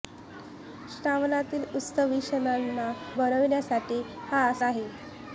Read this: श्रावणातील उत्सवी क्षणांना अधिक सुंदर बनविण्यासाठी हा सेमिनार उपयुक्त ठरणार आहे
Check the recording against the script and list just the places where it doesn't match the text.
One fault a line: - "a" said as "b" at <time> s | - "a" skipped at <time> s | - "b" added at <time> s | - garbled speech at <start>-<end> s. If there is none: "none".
- "अधिक सुंदर" skipped at 2.9 s
- "सेमिनार उपयुक्त ठरणार" skipped at 4.4 s